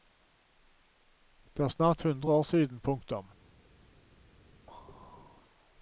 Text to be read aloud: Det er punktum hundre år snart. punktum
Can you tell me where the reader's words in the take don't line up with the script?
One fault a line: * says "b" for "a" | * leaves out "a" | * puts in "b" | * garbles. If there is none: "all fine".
* says "snart" for "punktum"
* says "siden" for "snart"